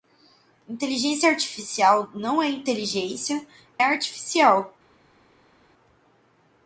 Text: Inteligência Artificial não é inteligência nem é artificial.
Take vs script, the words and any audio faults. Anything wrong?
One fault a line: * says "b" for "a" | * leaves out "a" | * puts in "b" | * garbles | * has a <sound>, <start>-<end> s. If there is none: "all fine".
* leaves out "nem"